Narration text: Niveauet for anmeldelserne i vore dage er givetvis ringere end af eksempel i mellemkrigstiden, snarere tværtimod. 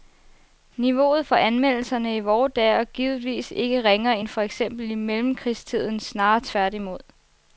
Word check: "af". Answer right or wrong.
wrong